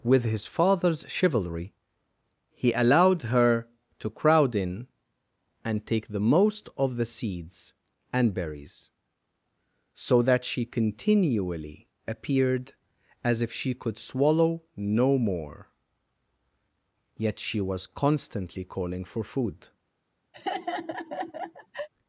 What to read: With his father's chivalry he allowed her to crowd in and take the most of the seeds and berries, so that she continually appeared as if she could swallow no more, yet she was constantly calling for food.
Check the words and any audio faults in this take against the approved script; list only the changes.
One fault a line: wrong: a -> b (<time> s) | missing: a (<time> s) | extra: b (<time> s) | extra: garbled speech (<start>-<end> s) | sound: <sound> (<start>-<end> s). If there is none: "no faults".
sound: laugh (20.3-21.9 s)